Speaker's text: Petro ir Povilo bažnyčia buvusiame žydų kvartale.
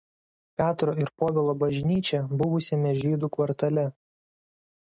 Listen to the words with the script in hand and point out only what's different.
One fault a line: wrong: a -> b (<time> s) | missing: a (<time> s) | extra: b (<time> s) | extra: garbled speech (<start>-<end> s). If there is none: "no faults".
no faults